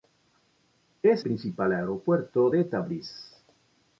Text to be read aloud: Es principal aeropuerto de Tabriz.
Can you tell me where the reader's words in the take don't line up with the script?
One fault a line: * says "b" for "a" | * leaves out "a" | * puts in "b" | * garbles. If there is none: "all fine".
all fine